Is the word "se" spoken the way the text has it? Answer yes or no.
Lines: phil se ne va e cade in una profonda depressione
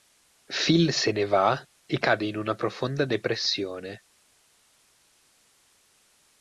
yes